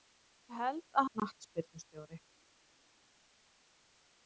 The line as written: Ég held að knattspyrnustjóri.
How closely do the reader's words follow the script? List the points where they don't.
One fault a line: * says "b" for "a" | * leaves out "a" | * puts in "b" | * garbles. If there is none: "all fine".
all fine